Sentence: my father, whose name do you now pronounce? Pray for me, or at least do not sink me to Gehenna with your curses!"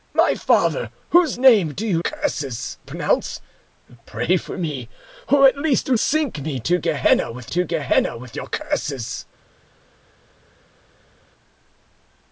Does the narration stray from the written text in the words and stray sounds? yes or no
yes